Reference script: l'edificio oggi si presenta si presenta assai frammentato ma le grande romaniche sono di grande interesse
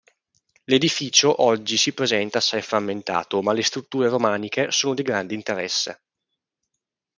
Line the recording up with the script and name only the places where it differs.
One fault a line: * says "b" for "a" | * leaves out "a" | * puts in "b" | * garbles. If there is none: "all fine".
* leaves out "si presenta"
* says "strutture" for "grande"